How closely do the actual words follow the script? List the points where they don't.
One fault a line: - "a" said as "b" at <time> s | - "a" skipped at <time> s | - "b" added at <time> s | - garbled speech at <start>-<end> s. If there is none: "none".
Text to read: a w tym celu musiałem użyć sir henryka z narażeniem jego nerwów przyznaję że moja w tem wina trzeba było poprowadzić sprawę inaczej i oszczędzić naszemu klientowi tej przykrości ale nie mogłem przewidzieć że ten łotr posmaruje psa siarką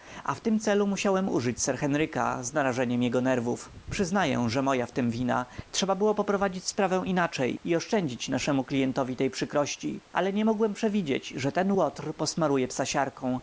none